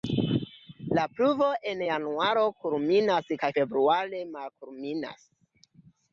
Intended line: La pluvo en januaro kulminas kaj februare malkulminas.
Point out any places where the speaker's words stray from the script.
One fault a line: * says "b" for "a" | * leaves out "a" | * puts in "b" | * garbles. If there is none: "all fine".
all fine